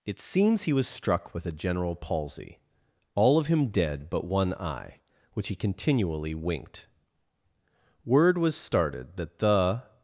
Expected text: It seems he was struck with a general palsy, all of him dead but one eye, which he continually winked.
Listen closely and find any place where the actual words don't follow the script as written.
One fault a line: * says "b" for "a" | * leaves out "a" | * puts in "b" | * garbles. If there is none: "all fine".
* puts in "Word was started that the"